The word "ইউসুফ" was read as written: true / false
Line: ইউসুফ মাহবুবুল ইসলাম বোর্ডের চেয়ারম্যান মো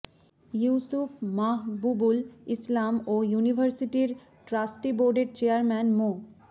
true